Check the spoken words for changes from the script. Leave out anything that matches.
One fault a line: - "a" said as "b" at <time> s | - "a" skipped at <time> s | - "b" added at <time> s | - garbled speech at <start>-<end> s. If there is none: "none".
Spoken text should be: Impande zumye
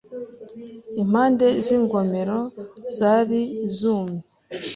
- "z'ingomero zari" added at 1.6 s